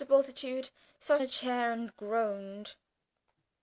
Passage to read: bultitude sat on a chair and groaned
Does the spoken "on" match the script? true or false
false